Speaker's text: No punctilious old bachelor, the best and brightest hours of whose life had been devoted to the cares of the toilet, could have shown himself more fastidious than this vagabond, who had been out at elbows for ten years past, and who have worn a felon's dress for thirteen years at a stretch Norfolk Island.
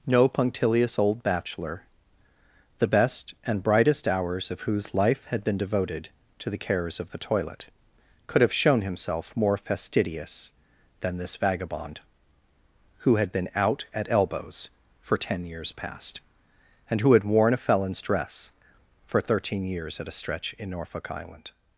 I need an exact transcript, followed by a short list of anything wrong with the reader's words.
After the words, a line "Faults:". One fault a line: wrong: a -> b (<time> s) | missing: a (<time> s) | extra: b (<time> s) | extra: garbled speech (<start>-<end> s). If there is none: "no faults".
No punctilious old bachelor, the best and brightest hours of whose life had been devoted to the cares of the toilet, could have shown himself more fastidious than this vagabond, who had been out at elbows for ten years past, and who had worn a felon's dress for thirteen years at a stretch in Norfolk Island.
Faults:
wrong: have -> had (17.1 s)
extra: in (20.5 s)